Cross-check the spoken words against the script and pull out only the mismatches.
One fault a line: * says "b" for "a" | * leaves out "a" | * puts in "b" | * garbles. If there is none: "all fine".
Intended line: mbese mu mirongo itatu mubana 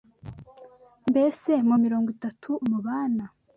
all fine